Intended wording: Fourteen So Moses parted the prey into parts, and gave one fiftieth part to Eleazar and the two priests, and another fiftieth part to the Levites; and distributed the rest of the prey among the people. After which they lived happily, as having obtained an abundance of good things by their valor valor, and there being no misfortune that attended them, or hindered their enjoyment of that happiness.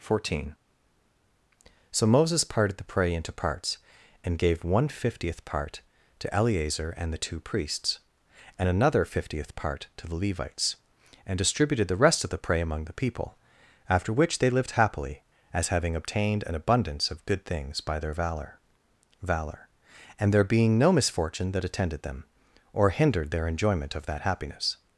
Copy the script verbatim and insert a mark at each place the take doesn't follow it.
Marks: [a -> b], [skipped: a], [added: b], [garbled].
Fourteen So Moses parted the prey into parts, and gave one fiftieth part to Eleazar and the two priests, and another fiftieth part to the Levites; and distributed the rest of the prey among the people. After which they lived happily, as having obtained an abundance of good things by their valor valor, and there being no misfortune that attended them, or hindered their enjoyment of that happiness.